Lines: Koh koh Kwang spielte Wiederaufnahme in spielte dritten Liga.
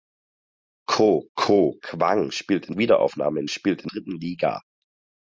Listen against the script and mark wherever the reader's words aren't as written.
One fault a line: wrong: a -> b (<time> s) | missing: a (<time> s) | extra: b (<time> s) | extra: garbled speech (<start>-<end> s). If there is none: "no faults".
no faults